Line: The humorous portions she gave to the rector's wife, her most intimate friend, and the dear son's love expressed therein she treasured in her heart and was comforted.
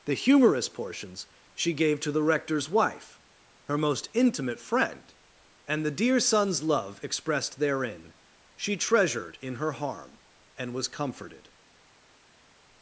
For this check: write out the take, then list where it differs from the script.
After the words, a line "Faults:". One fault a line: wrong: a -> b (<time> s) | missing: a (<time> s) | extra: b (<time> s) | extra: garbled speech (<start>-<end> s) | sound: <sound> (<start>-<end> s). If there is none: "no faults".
The humorous portions she gave to the rector's wife, her most intimate friend, and the dear son's love expressed therein she treasured in her harm and was comforted.
Faults:
wrong: heart -> harm (9.7 s)